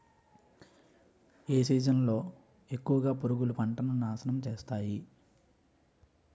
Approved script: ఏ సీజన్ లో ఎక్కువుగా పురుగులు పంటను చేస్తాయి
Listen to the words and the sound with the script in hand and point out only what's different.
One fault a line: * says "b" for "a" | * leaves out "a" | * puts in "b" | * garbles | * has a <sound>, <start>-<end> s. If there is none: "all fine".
* puts in "నాశనం"